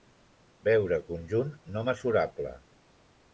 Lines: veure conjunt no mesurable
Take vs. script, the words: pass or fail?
pass